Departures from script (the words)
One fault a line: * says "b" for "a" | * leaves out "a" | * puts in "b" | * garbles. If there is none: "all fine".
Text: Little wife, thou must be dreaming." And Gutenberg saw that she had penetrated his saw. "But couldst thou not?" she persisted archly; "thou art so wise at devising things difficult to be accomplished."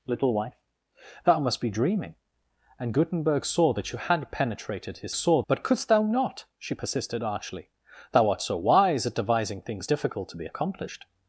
all fine